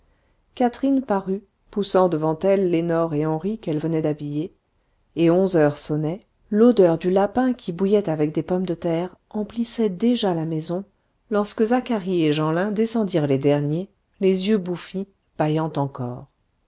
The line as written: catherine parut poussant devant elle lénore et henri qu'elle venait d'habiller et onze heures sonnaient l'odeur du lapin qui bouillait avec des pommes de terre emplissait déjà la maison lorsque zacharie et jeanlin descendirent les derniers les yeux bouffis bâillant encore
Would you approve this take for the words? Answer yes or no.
yes